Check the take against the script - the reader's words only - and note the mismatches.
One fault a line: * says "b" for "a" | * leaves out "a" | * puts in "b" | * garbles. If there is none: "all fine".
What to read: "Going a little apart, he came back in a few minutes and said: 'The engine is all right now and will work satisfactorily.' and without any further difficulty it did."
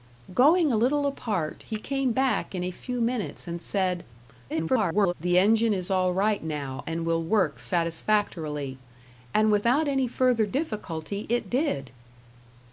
* garbles